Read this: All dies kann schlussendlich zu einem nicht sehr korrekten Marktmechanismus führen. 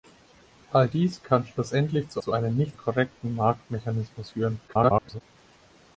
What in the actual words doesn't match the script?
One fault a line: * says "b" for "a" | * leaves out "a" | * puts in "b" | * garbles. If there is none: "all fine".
* puts in "zu"
* leaves out "sehr"
* garbles